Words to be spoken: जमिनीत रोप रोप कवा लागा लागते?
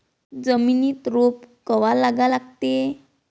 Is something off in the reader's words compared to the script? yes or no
yes